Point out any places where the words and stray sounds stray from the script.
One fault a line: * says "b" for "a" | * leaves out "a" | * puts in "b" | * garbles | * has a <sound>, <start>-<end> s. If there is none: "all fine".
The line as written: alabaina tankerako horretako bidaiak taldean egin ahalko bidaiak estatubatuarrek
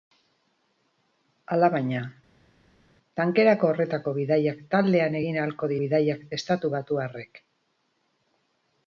all fine